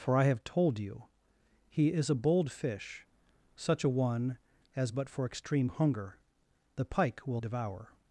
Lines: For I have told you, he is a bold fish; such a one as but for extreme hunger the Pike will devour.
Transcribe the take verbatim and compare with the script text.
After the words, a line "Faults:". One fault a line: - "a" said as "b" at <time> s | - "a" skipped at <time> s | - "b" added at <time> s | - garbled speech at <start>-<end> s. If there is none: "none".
For I have told you, he is a bold fish; such a one as but for extreme hunger the Pike will devour.
Faults:
none